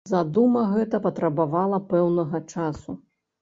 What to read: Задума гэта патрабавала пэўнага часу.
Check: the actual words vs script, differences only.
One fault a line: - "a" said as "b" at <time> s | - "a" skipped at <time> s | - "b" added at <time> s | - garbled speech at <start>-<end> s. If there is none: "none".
none